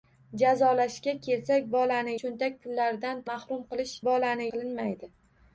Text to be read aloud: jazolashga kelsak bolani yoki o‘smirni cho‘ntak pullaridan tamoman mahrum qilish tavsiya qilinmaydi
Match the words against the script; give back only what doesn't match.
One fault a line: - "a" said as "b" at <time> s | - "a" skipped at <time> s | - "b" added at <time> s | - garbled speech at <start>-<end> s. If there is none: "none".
- "yoki o‘smirni" skipped at 2.1 s
- "tamoman" skipped at 3.3 s
- "tavsiya" said as "bolani" at 4.1 s